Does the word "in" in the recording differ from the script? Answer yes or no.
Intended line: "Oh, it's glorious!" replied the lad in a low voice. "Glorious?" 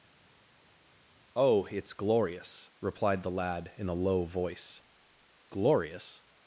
no